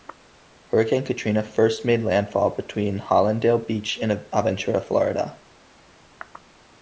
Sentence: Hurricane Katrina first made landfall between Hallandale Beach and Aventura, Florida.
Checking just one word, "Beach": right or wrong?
right